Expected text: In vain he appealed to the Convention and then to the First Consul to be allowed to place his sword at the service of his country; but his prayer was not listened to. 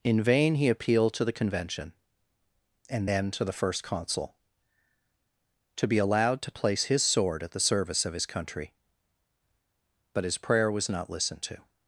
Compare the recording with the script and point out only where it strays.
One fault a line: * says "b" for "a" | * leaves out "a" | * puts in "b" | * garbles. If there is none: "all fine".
all fine